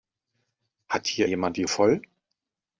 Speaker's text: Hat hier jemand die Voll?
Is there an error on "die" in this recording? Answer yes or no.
no